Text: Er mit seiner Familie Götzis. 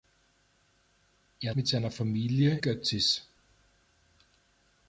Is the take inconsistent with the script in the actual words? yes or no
no